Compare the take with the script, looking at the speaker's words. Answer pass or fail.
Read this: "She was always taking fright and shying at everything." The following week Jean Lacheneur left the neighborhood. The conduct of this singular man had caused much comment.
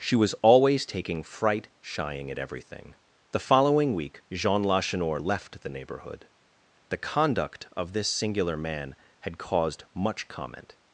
fail